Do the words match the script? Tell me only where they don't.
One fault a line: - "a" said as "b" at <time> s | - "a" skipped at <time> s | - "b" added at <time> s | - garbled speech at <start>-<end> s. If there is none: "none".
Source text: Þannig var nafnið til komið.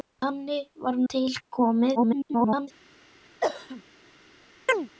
- "nafnið" skipped at 1.0 s
- garbled speech at 2.0-2.7 s